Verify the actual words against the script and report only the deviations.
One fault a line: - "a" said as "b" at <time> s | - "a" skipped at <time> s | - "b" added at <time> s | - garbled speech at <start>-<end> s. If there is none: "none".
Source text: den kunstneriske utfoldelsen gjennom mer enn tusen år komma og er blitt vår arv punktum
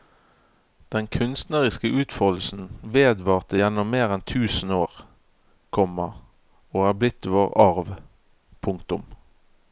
- "vedvarte" added at 3.0 s